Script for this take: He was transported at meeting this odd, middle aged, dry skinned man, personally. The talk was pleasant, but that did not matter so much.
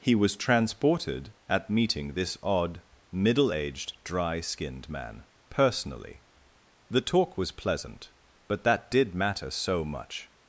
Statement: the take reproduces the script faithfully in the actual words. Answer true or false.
false